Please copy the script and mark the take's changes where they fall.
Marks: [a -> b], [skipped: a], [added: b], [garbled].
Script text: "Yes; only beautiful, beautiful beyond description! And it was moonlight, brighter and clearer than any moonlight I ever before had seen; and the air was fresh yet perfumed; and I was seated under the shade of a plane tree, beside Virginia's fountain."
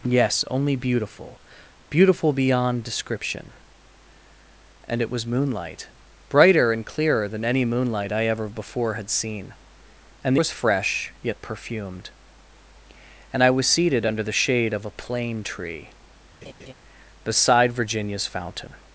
"Yes; only beautiful, beautiful beyond description! And it was moonlight, brighter and clearer than any moonlight I ever before had seen; and [skipped: the air] was fresh yet perfumed; and I was seated under the shade of a plane tree, beside Virginia's fountain."